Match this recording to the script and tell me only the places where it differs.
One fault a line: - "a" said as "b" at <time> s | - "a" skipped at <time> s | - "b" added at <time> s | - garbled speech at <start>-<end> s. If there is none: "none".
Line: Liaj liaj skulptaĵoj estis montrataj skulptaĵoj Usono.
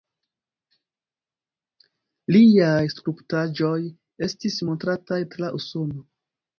- "liaj" skipped at 2.8 s
- "skulptaĵoj" said as "tra" at 5.4 s